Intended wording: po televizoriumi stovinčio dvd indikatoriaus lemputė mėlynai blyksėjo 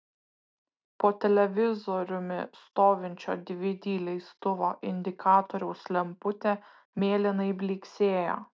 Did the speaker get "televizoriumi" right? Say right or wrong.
right